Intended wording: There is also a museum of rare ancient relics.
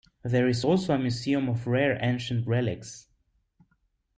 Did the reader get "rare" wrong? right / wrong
right